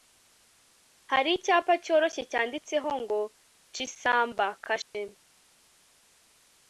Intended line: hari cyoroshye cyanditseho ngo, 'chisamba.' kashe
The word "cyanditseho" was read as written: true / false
true